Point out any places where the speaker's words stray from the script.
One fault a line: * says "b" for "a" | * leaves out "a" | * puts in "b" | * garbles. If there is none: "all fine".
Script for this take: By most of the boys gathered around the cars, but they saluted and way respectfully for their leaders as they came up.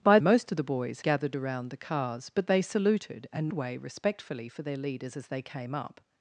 all fine